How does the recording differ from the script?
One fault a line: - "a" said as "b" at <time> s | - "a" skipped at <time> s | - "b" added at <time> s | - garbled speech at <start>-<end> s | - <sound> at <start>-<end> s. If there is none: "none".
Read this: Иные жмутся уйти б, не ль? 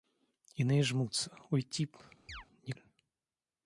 - chirp at 2.3-2.5 s